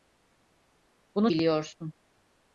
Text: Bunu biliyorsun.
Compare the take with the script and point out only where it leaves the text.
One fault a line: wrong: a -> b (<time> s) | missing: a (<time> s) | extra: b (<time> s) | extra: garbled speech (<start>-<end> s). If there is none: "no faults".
no faults